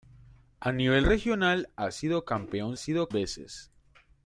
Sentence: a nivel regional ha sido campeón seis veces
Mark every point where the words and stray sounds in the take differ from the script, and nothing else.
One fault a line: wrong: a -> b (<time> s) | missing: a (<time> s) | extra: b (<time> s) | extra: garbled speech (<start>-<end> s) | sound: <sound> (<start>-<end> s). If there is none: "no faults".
wrong: seis -> sido (2.8 s)